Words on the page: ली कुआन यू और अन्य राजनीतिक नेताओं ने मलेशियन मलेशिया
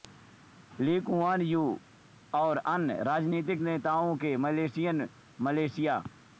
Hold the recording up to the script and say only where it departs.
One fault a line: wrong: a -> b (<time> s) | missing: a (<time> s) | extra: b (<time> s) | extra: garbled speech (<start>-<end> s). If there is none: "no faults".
no faults